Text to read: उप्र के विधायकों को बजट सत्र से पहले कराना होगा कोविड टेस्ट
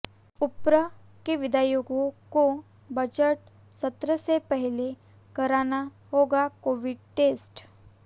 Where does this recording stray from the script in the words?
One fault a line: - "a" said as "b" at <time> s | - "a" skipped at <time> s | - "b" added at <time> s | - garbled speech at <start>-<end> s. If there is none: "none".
none